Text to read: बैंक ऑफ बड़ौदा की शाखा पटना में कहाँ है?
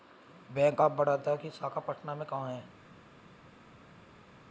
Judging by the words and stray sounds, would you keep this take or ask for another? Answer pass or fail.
pass